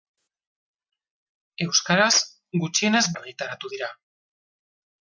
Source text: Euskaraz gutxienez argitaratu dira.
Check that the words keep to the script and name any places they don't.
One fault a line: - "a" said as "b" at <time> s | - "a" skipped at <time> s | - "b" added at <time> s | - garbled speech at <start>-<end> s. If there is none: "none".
none